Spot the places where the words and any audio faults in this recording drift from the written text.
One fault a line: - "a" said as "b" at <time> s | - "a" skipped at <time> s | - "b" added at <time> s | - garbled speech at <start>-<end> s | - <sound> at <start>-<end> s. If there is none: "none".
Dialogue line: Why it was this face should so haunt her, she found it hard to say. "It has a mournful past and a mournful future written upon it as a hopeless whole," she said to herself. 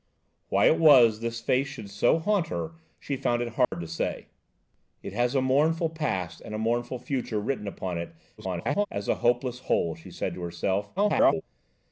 - dropout at 3.6-3.7 s
- garbled speech at 8.4-8.9 s
- garbled speech at 11.0-11.4 s